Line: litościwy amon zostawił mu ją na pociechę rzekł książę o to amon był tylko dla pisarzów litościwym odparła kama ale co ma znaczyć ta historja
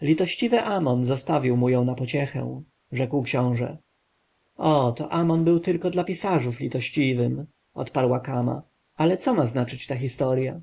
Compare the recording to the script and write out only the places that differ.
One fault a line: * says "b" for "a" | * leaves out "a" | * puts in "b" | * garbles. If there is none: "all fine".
all fine